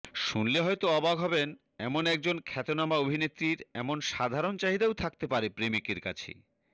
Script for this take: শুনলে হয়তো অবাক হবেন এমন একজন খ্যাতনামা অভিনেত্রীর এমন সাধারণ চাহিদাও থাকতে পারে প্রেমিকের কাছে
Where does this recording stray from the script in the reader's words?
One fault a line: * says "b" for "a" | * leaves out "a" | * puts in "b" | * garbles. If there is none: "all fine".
all fine